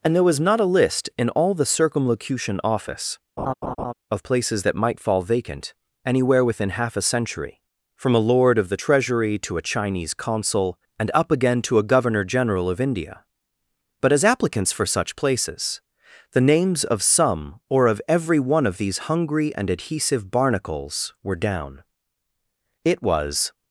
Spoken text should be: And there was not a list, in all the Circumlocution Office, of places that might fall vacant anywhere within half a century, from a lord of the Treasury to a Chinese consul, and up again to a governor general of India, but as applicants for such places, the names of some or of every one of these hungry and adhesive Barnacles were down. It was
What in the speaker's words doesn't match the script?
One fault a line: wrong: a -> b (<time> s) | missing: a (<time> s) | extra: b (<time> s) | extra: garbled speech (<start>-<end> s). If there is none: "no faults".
no faults